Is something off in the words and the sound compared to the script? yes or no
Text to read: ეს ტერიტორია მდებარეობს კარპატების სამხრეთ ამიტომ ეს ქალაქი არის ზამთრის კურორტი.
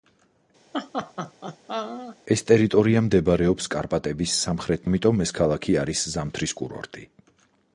yes